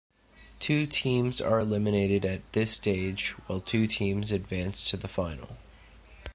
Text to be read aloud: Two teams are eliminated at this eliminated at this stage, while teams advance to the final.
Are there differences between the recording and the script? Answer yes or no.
yes